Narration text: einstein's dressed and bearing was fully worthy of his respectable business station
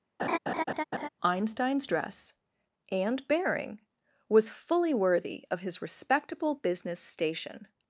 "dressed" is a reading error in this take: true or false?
true